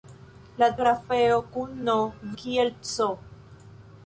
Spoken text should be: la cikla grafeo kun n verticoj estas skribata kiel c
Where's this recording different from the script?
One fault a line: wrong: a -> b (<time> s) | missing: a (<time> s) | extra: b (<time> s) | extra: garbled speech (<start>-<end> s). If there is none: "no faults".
missing: cikla (0.7 s)
missing: verticoj estas skribata (2.0 s)